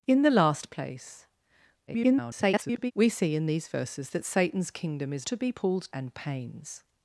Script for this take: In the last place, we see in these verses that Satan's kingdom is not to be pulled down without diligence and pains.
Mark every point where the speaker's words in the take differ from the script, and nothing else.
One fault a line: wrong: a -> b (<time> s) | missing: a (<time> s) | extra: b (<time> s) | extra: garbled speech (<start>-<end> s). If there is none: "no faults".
extra: garbled speech (1.9-2.9 s)
missing: not (5.3 s)
missing: down without diligence (5.9 s)